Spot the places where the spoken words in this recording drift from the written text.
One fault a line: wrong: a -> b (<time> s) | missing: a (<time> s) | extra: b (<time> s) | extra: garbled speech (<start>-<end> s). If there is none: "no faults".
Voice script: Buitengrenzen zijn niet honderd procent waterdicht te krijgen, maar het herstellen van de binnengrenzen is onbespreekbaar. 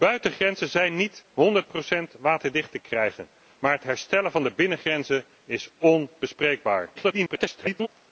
extra: garbled speech (6.9-7.9 s)